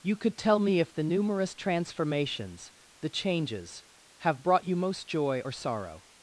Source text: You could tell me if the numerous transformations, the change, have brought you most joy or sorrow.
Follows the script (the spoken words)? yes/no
no